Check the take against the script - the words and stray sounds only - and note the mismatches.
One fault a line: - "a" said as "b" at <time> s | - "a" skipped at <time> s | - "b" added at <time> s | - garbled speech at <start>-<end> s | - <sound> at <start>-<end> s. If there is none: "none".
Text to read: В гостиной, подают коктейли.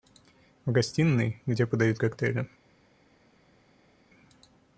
- "где" added at 1.4 s